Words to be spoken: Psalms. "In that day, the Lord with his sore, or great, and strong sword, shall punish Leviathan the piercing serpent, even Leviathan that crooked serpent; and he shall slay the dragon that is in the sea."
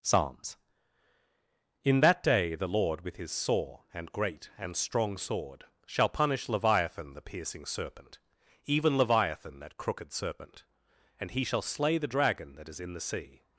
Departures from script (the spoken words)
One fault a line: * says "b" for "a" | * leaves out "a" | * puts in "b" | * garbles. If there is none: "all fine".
* says "and" for "or"